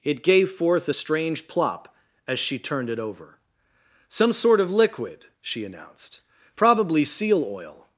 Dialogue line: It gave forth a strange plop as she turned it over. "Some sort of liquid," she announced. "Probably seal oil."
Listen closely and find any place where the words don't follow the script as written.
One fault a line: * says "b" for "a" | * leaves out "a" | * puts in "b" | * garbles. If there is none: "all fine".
all fine